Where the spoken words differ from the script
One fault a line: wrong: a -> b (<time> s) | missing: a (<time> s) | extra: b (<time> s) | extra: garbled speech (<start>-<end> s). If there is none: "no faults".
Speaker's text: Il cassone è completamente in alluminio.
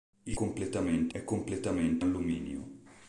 wrong: cassone -> completamente (0.3 s)
missing: in (2.0 s)